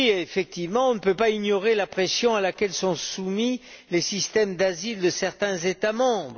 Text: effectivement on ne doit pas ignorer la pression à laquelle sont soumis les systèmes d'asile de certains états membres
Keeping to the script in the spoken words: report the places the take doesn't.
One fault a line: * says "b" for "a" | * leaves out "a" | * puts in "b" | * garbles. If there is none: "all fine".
* says "peut" for "doit"